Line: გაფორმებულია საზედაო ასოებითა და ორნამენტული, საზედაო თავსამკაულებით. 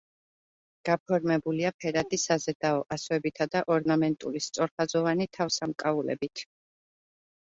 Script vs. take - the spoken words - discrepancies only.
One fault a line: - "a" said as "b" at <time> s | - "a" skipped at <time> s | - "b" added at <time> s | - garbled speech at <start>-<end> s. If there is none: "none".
- "ფერადი" added at 1.8 s
- "საზედაო" said as "სწორხაზოვანი" at 4.5 s